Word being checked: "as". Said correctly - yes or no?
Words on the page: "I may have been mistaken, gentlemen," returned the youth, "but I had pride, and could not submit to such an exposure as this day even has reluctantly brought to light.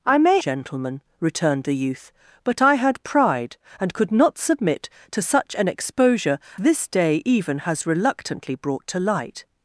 no